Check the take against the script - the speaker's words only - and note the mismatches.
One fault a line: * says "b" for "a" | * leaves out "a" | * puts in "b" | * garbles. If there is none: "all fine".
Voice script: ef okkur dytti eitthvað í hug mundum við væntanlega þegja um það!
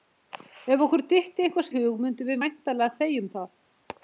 all fine